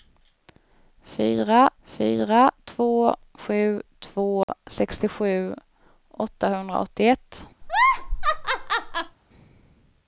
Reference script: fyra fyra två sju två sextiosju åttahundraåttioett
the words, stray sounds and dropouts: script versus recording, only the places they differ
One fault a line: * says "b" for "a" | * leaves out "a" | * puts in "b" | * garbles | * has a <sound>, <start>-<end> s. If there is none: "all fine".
* has a dropout, 4.4-4.5 s
* has a laugh, 7.6-9.2 s